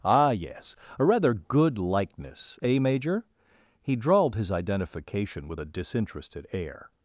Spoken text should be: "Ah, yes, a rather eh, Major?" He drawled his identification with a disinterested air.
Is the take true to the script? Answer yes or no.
no